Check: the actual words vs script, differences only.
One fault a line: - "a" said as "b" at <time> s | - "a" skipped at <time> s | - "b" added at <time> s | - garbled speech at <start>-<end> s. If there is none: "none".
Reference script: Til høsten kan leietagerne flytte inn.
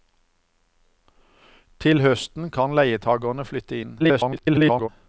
- garbled speech at 4.0-4.9 s